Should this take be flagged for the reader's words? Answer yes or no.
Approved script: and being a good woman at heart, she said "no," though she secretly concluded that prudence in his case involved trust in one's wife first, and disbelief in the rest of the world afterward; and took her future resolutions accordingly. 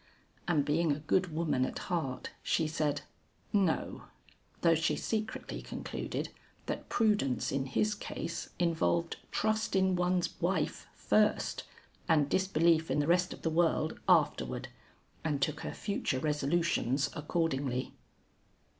no